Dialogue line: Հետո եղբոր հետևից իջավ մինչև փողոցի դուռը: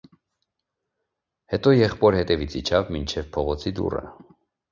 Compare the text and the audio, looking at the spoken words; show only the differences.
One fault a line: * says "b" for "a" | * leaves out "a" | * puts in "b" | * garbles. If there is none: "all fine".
all fine